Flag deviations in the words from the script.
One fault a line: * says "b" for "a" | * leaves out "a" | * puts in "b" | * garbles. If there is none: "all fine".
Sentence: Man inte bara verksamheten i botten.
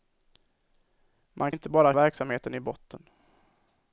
all fine